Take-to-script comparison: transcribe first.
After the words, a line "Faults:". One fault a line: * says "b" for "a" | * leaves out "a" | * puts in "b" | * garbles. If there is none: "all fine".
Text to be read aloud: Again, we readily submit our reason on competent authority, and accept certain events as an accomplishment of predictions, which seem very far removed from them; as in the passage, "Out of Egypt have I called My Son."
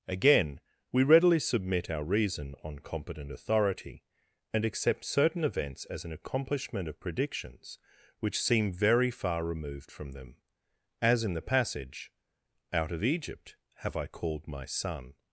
Again, we readily submit our reason on competent authority, and accept certain events as an accomplishment of predictions, which seem very far removed from them; as in the passage, "Out of Egypt have I called My Son."
Faults:
all fine